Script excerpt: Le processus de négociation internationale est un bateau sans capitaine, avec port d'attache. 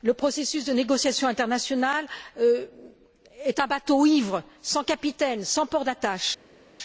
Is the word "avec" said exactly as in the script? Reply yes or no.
no